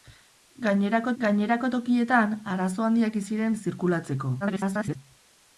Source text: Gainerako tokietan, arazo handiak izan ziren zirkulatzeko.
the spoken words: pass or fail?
fail